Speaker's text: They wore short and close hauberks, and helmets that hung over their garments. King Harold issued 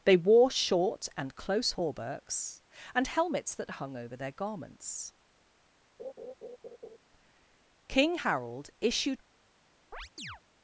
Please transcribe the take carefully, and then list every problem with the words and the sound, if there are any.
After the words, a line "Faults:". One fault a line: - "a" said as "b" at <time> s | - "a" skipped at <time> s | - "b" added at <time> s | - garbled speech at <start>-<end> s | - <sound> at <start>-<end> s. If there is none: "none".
They wore short and close hauberks, and helmets that hung over their garments. King Harold issued
Faults:
- laugh at 6.0-7.0 s
- chirp at 9.9-10.4 s